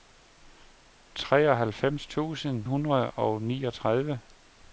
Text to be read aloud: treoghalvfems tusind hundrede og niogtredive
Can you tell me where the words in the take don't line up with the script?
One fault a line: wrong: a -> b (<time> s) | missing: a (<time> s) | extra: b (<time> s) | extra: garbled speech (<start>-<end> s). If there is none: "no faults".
no faults